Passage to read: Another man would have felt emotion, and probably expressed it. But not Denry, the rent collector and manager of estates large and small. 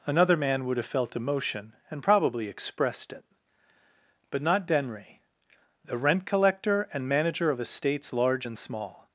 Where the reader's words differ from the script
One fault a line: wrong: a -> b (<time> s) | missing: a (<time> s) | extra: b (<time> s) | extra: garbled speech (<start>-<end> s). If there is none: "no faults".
no faults